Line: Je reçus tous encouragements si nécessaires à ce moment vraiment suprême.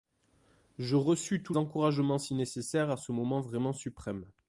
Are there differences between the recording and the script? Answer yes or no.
no